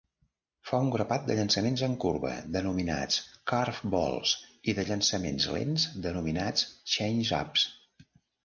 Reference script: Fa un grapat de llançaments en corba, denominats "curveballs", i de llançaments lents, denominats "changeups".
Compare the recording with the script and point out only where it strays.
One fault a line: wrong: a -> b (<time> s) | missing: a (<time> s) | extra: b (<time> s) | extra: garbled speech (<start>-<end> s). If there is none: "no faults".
no faults